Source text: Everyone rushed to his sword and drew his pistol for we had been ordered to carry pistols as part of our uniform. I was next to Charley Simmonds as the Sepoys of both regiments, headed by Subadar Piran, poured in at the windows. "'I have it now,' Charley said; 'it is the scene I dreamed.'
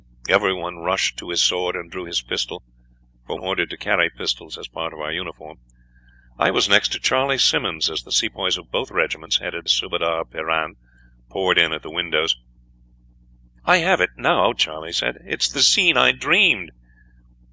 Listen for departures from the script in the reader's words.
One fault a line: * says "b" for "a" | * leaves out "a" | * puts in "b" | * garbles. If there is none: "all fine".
* leaves out "we had been"
* leaves out "by"